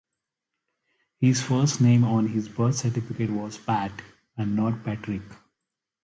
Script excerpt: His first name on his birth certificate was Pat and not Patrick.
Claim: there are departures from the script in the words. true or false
false